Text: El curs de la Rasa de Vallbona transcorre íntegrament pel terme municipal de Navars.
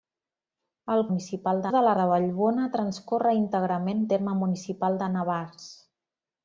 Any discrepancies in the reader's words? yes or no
yes